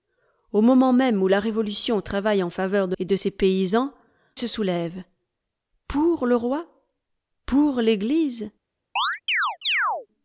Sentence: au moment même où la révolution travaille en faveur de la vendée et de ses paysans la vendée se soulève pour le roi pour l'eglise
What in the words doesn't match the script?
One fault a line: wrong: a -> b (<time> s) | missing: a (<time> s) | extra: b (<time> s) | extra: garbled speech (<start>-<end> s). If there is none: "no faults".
missing: la vendée (3.0 s)
missing: la vendée (3.9 s)